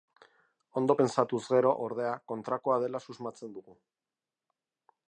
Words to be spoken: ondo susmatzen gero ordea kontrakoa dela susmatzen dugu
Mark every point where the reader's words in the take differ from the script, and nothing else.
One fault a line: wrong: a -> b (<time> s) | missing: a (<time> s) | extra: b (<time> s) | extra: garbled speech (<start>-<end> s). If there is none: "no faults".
wrong: susmatzen -> pentsatuz (1.0 s)